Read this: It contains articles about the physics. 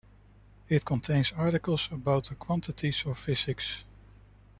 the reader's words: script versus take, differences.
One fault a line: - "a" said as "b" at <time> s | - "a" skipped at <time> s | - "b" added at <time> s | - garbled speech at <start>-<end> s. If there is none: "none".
- "quantities of" added at 2.3 s